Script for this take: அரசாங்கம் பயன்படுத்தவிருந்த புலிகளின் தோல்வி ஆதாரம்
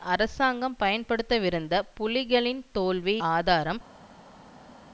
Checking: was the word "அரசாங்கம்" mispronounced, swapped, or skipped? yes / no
no